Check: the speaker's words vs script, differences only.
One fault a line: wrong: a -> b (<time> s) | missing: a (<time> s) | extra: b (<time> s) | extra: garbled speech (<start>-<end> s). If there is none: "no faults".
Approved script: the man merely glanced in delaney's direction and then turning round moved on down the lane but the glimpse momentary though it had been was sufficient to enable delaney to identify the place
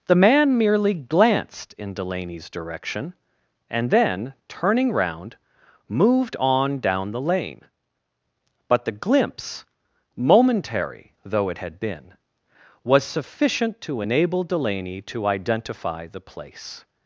no faults